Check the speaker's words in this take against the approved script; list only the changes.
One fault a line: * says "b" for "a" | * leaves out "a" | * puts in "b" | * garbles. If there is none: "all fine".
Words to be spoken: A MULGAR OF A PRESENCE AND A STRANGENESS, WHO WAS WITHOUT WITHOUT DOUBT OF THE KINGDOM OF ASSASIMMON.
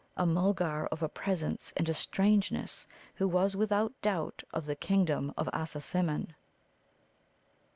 * leaves out "WITHOUT"